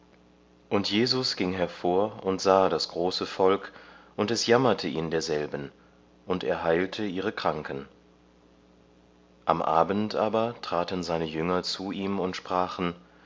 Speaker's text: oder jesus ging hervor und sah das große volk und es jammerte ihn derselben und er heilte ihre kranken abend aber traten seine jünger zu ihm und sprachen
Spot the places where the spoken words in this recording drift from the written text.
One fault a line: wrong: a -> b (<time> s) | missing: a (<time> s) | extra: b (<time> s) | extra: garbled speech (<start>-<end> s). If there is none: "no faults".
wrong: oder -> und (0.7 s)
extra: am (9.4 s)